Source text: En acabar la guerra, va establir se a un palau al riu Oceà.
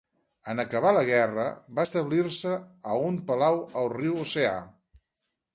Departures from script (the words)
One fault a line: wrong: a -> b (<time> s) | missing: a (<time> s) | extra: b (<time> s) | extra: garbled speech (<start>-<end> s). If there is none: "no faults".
no faults